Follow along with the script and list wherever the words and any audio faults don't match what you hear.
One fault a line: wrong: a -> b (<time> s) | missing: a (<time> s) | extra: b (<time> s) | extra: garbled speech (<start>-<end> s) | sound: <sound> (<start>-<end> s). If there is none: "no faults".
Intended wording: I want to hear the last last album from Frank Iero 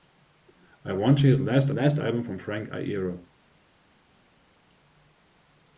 no faults